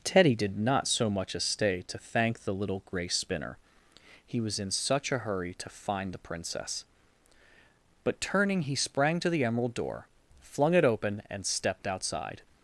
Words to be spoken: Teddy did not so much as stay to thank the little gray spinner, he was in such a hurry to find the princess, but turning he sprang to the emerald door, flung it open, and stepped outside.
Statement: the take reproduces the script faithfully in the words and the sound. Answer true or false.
true